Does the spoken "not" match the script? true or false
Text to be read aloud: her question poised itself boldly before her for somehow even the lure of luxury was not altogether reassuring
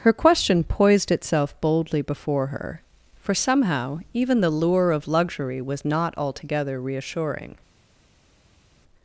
true